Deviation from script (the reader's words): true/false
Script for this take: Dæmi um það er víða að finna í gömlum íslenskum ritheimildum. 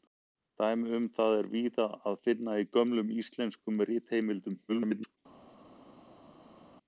true